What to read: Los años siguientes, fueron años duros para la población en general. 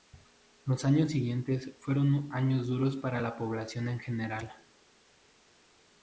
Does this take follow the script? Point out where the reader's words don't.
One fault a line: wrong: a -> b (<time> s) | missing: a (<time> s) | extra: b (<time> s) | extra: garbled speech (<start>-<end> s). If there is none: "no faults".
no faults